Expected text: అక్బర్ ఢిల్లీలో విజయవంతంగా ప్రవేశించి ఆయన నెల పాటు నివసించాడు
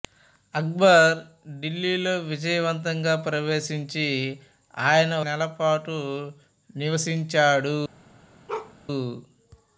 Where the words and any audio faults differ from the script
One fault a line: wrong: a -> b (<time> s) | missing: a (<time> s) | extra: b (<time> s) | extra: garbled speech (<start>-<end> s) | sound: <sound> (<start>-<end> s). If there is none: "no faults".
sound: bark (8.5-8.7 s)